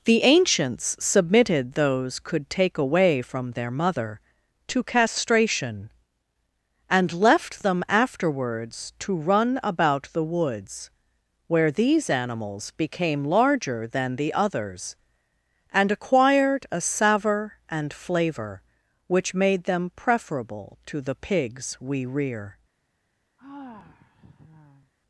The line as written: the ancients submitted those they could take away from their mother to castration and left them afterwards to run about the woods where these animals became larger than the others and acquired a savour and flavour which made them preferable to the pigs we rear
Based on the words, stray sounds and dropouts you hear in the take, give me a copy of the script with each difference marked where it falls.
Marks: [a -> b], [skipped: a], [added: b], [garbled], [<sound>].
the ancients submitted those [skipped: they] could take away from their mother to castration and left them afterwards to run about the woods where these animals became larger than the others and acquired a savour and flavour which made them preferable to the pigs we rear [sigh]